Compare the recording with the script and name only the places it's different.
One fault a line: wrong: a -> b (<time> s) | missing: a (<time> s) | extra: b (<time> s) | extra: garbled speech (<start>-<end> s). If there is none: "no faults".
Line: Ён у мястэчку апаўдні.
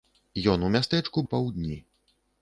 no faults